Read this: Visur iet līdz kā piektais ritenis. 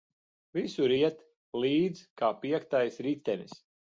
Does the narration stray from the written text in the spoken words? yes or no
no